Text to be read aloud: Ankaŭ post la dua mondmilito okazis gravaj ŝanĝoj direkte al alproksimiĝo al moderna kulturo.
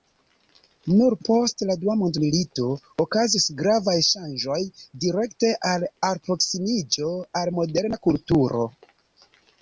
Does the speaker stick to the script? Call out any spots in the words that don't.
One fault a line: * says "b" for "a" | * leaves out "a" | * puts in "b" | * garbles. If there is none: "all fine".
* says "Nur" for "Ankaŭ"